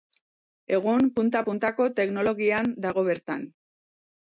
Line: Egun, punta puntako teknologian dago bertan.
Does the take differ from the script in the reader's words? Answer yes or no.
no